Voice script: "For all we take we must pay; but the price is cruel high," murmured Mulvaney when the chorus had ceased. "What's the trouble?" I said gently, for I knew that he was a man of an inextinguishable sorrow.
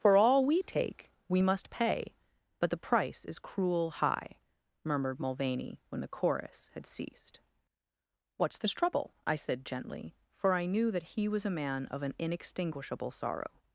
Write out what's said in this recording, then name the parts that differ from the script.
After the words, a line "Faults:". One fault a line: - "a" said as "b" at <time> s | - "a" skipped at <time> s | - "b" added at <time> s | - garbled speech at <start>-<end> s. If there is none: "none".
"For all we take we must pay; but the price is cruel high," murmured Mulvaney when the chorus had ceased. "What's this trouble?" I said gently, for I knew that he was a man of an inextinguishable sorrow.
Faults:
- "the" said as "this" at 8.6 s